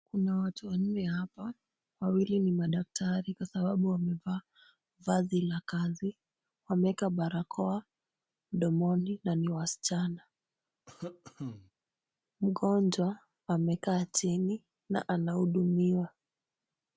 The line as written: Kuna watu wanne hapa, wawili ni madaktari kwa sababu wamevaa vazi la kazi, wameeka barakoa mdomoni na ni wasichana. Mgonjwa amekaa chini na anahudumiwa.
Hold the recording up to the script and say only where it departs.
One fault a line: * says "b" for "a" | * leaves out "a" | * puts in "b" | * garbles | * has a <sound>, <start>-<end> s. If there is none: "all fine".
* has a cough, 10.9-11.7 s